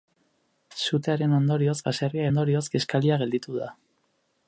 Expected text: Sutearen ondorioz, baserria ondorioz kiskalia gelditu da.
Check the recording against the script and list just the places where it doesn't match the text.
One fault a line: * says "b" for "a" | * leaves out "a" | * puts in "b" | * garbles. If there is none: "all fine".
all fine